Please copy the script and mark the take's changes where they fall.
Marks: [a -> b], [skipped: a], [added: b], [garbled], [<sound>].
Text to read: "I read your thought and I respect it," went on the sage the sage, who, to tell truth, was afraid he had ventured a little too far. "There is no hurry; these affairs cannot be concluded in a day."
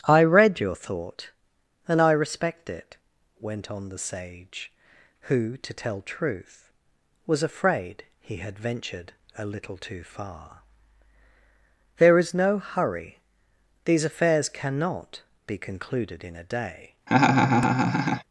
"I read your thought and I respect it," went on the sage [skipped: the sage,] who, to tell truth, was afraid he had ventured a little too far. "There is no hurry; these affairs cannot be concluded in a day." [laugh]